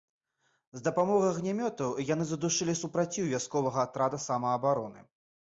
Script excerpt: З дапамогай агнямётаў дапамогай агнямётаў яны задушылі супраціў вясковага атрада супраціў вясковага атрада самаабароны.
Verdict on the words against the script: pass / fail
fail